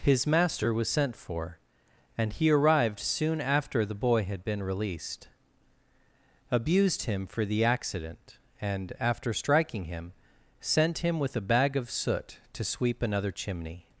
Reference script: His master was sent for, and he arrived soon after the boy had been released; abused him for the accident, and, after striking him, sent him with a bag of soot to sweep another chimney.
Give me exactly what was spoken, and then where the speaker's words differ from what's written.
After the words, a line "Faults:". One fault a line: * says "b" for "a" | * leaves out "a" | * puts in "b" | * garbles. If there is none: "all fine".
His master was sent for, and he arrived soon after the boy had been released; abused him for the accident, and, after striking him, sent him with a bag of soot to sweep another chimney.
Faults:
all fine